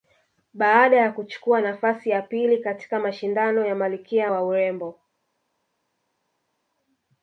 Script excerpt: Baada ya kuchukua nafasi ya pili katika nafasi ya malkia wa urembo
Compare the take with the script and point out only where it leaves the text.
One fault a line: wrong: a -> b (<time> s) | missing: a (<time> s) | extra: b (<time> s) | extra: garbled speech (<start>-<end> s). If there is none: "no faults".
wrong: nafasi -> mashindano (3.0 s)